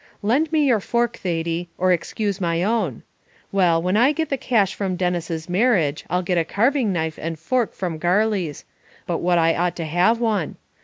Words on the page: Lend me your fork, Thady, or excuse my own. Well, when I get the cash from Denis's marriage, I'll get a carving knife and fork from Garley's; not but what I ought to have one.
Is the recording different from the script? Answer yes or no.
yes